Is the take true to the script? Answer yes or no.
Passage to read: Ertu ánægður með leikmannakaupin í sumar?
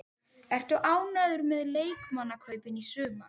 yes